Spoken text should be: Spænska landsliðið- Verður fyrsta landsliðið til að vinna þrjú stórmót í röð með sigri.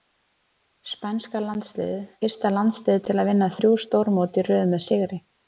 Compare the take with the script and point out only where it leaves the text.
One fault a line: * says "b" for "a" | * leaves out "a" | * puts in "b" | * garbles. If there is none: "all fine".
* leaves out "Verður"